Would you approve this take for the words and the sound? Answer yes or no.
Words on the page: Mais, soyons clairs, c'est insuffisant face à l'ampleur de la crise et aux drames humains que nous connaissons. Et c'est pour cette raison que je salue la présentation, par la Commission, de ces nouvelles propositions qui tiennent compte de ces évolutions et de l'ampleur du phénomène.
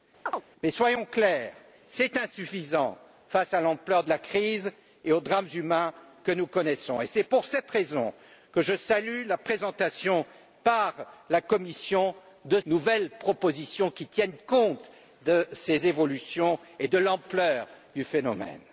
no